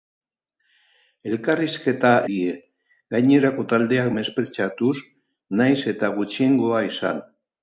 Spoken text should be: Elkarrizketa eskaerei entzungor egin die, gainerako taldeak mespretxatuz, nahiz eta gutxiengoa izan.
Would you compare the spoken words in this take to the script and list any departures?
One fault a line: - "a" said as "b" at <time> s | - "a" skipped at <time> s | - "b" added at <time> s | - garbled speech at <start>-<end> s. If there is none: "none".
- "eskaerei entzungor egin" skipped at 2.1 s